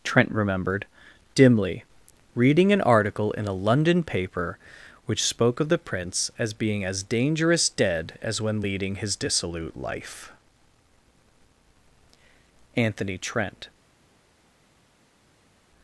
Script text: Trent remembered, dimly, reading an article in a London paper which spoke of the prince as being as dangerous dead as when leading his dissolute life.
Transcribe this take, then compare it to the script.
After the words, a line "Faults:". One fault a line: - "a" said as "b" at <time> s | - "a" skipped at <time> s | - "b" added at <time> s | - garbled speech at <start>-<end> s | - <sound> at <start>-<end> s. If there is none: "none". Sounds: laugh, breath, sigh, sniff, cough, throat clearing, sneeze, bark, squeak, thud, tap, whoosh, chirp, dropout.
Trent remembered, dimly, reading an article in a London paper which spoke of the prince as being as dangerous dead as when leading his dissolute life. Anthony Trent
Faults:
- "Anthony Trent" added at 12.8 s